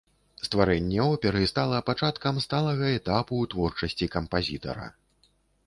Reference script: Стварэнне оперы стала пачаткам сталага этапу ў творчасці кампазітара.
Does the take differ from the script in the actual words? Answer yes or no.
no